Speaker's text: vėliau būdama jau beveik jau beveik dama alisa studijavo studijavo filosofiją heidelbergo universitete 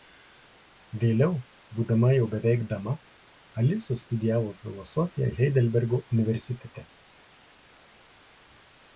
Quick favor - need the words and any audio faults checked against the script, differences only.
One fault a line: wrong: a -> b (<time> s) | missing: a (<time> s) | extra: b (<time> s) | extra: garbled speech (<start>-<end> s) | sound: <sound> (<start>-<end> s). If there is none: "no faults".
missing: jau beveik (2.6 s)
missing: studijavo (4.6 s)